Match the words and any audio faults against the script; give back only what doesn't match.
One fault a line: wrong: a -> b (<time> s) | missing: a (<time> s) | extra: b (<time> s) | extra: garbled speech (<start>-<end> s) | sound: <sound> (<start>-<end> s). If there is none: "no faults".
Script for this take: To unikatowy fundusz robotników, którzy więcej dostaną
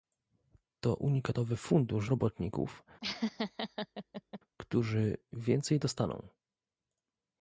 sound: laugh (3.0-4.4 s)